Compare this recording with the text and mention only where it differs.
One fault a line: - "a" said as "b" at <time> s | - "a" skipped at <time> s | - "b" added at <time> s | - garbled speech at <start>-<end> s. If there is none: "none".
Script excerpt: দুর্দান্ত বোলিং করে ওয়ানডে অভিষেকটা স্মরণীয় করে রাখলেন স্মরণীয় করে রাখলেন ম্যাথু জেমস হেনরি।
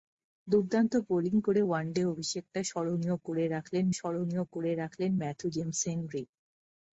none